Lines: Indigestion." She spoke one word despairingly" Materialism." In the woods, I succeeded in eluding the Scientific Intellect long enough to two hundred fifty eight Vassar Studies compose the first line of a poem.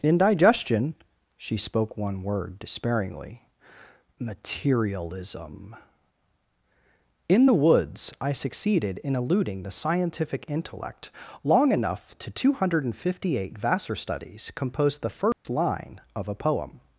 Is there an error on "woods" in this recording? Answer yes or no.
no